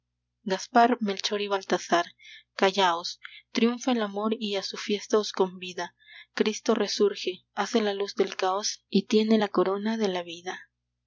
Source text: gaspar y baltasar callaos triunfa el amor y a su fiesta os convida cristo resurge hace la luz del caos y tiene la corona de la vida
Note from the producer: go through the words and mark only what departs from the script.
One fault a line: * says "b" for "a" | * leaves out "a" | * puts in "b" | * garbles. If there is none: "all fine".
* puts in "melchor"